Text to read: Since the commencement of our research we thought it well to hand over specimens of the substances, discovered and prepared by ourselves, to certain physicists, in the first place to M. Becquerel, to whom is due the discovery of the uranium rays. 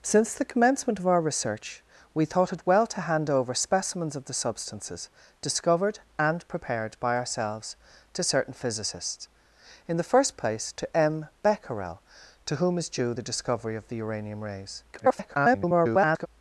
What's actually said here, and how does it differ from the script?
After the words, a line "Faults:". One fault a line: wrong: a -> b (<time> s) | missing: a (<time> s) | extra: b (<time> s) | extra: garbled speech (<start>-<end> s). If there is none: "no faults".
Since the commencement of our research we thought it well to hand over specimens of the substances, discovered and prepared by ourselves, to certain physicists, in the first place to M. Becquerel, to whom is due the discovery of the uranium rays. [garbled]
Faults:
extra: garbled speech (14.9-16.3 s)